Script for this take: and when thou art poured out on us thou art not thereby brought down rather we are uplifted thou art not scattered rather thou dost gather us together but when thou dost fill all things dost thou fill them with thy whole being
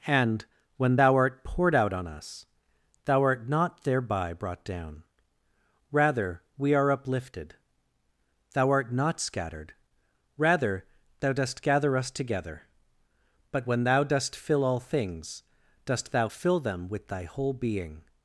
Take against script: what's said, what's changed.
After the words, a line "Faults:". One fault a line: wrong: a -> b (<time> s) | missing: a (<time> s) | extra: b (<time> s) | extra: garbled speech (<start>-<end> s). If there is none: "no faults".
and when thou art poured out on us thou art not thereby brought down rather we are uplifted thou art not scattered rather thou dost gather us together but when thou dost fill all things dost thou fill them with thy whole being
Faults:
no faults